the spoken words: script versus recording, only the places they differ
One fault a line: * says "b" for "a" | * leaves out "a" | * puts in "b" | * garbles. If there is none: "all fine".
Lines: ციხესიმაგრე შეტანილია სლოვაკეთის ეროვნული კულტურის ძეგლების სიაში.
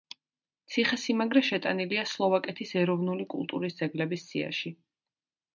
all fine